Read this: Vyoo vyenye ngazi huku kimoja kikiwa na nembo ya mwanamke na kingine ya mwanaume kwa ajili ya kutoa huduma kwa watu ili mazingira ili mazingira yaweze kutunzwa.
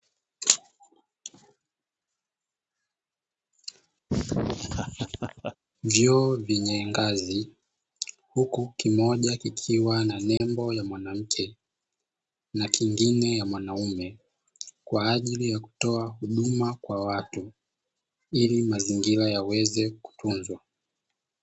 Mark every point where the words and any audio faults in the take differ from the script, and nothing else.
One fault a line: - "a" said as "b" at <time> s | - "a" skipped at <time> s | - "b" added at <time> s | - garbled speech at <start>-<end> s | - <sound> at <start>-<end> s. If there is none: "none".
- laugh at 4.1-5.6 s
- dropout at 10.4-10.4 s
- "ili mazingira" skipped at 19.3 s